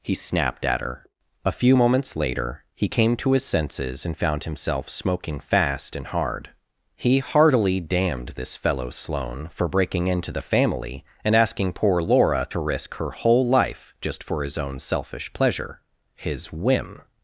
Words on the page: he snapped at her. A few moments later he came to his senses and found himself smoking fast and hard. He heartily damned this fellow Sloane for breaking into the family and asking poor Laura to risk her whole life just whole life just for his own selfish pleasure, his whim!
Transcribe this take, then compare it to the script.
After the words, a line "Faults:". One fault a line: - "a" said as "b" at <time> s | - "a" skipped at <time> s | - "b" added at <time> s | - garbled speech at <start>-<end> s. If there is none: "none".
he snapped at her. A few moments later he came to his senses and found himself smoking fast and hard. He heartily damned this fellow Sloane for breaking into the family and asking poor Laura to risk her whole life just for his own selfish pleasure, his whim!
Faults:
- "whole life just" skipped at 14.2 s